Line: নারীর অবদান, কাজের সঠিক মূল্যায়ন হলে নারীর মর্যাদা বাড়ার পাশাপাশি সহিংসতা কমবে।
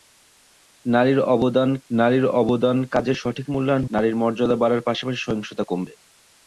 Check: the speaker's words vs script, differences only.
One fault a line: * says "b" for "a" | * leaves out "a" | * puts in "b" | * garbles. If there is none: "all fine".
* puts in "নারীর অবদান"
* leaves out "হলে"